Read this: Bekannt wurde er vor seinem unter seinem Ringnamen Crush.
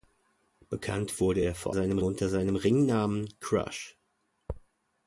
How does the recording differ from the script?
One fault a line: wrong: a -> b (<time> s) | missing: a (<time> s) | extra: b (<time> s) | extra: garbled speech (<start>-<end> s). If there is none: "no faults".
no faults